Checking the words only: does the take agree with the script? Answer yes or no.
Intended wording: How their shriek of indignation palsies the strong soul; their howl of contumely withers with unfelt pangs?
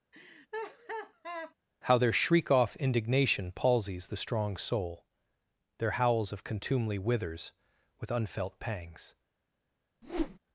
no